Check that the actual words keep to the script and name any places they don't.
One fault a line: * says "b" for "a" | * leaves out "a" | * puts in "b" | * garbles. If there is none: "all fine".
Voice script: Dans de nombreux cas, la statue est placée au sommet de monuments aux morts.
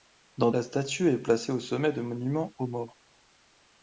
* leaves out "de nombreux cas"